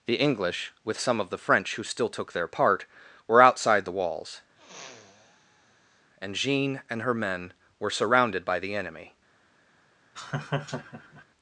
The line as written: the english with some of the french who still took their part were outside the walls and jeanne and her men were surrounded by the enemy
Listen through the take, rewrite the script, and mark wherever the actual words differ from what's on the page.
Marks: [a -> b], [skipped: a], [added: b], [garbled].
the english with some of the french who still took their part were outside the walls and jeanne and her men were surrounded by the enemy